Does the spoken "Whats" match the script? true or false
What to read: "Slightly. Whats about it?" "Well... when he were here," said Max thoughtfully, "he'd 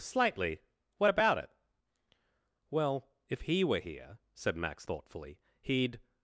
false